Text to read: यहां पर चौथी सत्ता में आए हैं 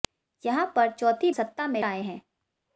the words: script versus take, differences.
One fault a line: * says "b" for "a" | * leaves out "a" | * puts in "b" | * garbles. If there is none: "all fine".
all fine